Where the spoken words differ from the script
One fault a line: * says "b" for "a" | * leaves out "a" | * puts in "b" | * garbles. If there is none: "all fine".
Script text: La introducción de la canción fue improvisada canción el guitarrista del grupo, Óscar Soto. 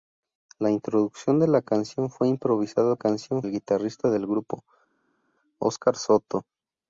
all fine